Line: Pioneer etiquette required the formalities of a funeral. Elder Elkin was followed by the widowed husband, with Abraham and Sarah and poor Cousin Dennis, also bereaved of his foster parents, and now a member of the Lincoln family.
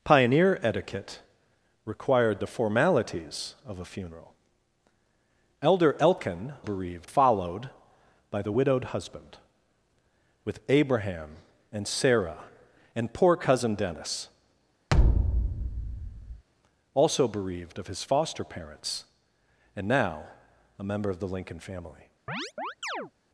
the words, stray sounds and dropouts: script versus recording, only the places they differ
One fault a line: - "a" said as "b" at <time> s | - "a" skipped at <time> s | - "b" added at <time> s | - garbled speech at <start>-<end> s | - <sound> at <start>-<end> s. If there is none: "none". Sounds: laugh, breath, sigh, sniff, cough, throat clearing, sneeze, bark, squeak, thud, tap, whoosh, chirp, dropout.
- "was" said as "bereaved" at 6.6 s
- thud at 14.9-16.4 s
- chirp at 22.3-23.1 s